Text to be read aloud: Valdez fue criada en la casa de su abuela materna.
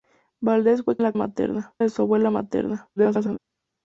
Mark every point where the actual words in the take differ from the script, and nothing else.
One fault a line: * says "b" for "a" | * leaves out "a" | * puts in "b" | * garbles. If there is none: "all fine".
* leaves out "criada"
* says "materna" for "casa"
* garbles